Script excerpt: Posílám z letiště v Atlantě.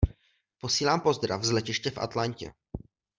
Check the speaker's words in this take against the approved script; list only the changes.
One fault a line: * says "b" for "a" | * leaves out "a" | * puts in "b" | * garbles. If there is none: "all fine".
* puts in "pozdrav"